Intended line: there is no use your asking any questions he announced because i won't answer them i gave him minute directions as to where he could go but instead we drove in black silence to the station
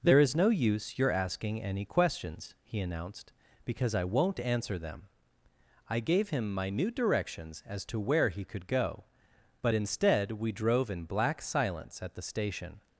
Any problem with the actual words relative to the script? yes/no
yes